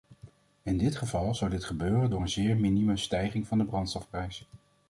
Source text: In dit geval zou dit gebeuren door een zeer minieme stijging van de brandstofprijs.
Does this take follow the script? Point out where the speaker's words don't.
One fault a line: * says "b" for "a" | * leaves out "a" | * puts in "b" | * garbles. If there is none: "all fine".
all fine